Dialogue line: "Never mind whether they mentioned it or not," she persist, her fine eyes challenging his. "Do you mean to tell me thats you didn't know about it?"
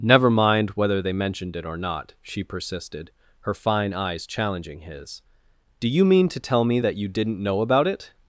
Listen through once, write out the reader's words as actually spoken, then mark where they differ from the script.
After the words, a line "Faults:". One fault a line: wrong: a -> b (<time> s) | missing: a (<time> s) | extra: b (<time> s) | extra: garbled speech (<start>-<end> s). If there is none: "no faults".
"Never mind whether they mentioned it or not," she persisted, her fine eyes challenging his. "Do you mean to tell me that you didn't know about it?"
Faults:
wrong: persist -> persisted (2.4 s)
wrong: thats -> that (6.8 s)